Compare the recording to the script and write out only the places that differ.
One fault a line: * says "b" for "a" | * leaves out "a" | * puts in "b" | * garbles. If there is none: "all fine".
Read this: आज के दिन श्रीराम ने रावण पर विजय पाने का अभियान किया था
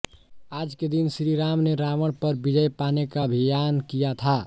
all fine